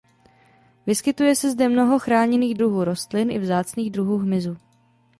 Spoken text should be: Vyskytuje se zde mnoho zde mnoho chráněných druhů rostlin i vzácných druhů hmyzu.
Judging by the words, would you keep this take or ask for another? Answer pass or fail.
fail